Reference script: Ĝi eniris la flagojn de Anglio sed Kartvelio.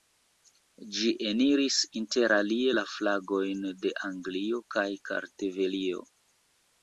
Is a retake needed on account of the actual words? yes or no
yes